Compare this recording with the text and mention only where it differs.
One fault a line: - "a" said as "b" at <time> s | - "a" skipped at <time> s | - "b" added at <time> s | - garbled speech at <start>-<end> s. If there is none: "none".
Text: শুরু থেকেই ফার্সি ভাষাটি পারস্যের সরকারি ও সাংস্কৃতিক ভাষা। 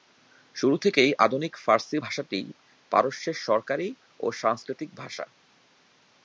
- "আধুনিক" added at 1.2 s